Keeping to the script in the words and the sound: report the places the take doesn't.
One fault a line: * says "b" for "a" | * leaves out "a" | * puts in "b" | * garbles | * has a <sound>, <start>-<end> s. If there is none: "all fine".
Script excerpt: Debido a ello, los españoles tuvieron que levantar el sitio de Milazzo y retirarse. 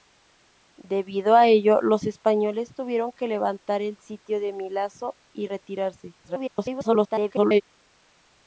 * garbles